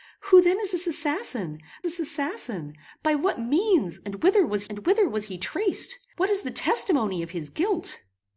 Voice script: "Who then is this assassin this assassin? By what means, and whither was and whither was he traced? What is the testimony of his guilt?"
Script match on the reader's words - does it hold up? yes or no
yes